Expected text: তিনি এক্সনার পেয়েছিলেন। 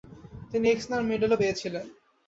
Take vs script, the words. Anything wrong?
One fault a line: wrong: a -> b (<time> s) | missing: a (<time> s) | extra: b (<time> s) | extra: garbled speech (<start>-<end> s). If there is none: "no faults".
extra: মেডেলও (1.1 s)